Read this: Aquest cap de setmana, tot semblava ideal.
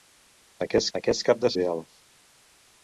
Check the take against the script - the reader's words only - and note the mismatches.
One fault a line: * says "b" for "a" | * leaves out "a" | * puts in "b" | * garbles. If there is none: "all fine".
* puts in "aquest"
* leaves out "setmana tot semblava"